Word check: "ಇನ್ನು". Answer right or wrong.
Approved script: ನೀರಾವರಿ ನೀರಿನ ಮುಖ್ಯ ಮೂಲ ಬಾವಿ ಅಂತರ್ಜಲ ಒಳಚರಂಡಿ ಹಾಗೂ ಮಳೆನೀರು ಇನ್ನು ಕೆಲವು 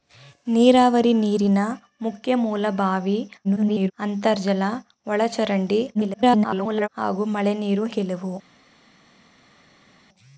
wrong